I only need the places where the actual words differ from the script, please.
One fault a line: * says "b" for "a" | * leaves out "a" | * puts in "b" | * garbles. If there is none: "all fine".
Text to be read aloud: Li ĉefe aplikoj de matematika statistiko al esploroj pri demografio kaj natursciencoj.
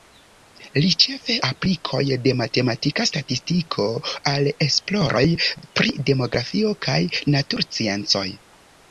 all fine